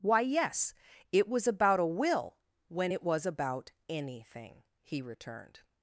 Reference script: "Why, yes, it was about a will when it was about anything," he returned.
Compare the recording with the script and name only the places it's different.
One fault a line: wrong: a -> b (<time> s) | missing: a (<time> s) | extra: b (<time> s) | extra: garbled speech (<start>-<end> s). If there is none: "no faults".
no faults